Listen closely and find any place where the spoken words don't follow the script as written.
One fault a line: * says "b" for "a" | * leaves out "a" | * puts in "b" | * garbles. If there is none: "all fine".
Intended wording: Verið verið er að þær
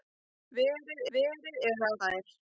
all fine